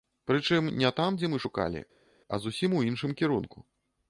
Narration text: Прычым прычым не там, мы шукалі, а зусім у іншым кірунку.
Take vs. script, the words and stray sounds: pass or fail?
fail